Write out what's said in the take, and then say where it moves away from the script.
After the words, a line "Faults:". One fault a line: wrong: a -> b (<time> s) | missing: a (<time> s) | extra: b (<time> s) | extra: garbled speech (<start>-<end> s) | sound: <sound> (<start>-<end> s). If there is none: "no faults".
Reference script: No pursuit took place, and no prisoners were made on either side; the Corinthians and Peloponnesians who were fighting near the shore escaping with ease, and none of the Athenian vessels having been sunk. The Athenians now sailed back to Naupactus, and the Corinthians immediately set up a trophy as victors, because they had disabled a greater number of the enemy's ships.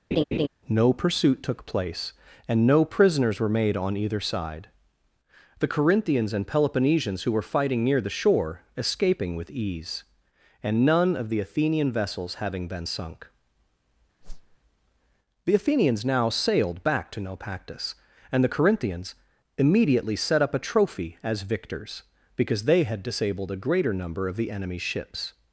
No pursuit took place, and no prisoners were made on either side; the Corinthians and Peloponnesians who were fighting near the shore escaping with ease, and none of the Athenian vessels having been sunk. The Athenians now sailed back to Naupactus, and the Corinthians immediately set up a trophy as victors, because they had disabled a greater number of the enemy's ships.
Faults:
sound: laugh (0.1-0.5 s)
sound: whoosh (14.2-14.6 s)